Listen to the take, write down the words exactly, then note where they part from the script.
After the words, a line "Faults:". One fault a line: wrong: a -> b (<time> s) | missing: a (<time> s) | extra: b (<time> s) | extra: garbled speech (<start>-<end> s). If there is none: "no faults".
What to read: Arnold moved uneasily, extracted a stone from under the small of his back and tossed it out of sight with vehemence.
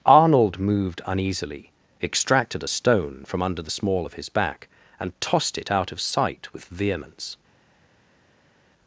Arnold moved uneasily, extracted a stone from under the small of his back and tossed it out of sight with vehemence.
Faults:
no faults